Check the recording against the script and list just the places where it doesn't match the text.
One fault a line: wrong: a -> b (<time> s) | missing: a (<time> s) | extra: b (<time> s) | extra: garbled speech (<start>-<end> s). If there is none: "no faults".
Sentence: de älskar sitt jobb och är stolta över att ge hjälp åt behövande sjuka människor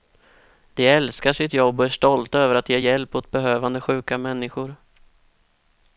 no faults